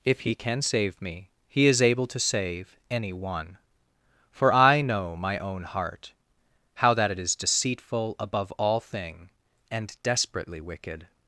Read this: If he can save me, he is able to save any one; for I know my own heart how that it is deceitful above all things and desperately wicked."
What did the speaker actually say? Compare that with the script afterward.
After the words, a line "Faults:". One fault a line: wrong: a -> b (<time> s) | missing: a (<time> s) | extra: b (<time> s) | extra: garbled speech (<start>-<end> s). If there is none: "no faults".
If he can save me, he is able to save any one; for I know my own heart how that it is deceitful above all thing and desperately wicked."
Faults:
wrong: things -> thing (8.8 s)